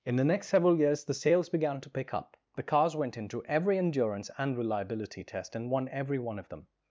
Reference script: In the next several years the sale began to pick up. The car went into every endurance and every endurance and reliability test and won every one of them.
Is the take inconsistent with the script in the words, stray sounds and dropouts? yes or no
yes